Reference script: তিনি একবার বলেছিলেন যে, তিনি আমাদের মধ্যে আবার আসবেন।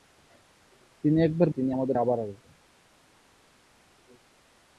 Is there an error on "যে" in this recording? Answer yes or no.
yes